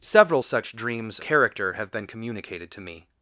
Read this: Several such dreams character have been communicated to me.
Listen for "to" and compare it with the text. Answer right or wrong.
right